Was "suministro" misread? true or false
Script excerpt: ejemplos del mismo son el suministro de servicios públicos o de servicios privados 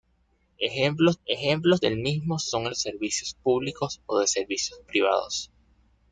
true